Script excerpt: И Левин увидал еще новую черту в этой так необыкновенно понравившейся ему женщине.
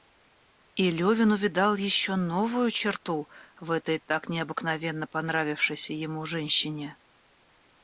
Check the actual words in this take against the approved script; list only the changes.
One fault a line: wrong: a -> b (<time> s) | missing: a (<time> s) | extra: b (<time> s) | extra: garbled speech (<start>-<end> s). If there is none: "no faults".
no faults